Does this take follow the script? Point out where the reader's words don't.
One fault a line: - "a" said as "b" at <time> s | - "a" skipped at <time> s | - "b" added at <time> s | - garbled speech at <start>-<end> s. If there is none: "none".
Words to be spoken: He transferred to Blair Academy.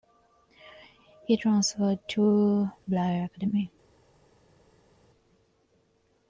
none